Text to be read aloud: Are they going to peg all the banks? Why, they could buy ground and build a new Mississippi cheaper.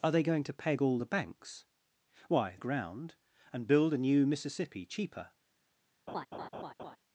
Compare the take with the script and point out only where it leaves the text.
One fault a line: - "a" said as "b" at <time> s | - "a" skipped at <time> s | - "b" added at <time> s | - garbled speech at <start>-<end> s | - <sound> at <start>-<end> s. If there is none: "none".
- "they could buy" skipped at 2.5 s
- laugh at 6.1-7.0 s